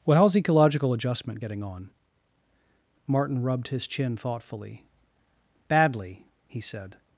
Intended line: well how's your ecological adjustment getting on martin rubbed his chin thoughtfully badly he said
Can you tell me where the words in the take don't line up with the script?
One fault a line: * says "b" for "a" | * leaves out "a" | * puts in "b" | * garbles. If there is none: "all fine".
* leaves out "your"